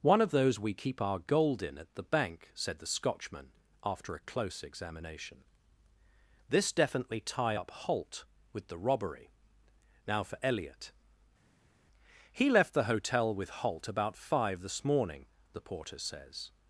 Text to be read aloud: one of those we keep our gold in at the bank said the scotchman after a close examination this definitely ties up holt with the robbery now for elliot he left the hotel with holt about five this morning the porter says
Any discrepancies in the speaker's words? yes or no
yes